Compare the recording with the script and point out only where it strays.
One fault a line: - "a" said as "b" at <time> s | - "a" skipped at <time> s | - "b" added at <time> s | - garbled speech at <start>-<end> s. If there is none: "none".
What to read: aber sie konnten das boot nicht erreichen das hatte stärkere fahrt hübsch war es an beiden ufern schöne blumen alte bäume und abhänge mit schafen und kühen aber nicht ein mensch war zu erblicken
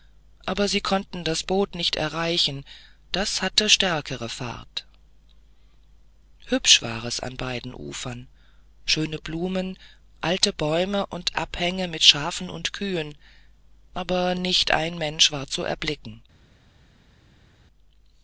none